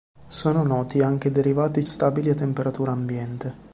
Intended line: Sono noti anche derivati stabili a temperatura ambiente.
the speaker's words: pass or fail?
pass